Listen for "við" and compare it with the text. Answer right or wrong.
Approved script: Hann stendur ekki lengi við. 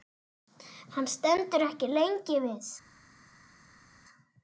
right